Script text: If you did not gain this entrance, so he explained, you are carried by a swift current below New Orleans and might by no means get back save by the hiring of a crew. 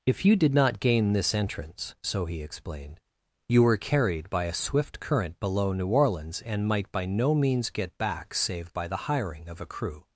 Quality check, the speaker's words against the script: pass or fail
fail